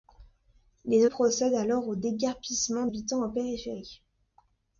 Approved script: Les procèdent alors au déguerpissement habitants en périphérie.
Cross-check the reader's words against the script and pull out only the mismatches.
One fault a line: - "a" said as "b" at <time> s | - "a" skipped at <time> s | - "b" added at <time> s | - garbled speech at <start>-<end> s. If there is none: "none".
none